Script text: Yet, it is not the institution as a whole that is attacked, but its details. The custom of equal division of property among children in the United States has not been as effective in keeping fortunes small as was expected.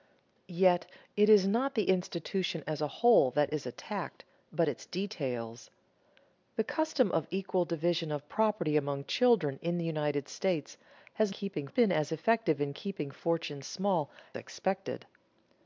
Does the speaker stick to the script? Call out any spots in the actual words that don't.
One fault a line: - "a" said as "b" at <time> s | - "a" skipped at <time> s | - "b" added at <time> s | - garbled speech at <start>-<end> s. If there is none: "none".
- "not" said as "keeping" at 11.3 s
- "as was" skipped at 14.1 s